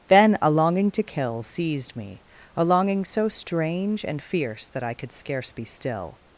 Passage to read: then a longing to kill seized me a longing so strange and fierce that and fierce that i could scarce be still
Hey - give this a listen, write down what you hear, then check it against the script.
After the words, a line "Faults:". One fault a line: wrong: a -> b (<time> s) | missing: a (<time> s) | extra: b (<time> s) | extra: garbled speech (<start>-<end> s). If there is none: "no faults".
then a longing to kill seized me a longing so strange and fierce that i could scarce be still
Faults:
missing: and fierce that (4.8 s)